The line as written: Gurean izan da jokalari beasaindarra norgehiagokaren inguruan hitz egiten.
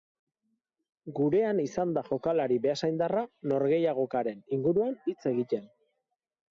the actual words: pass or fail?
pass